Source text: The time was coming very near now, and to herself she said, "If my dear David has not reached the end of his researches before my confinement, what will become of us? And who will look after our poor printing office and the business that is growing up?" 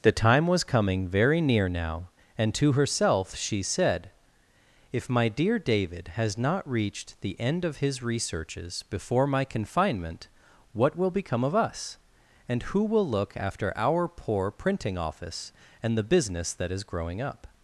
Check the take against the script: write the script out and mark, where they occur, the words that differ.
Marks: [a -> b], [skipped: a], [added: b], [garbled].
The time was coming very near now, and to herself she said, "If my dear David has not reached the end of his researches before my confinement, what will become of us? And who will look after our poor printing office and the business that is growing up?"